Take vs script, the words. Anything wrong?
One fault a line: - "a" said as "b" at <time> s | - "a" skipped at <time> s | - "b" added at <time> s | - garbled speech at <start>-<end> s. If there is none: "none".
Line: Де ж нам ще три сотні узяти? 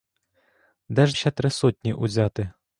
- "нам" skipped at 1.2 s